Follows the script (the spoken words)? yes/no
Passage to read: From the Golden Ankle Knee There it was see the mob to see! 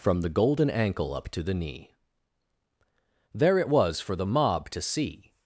no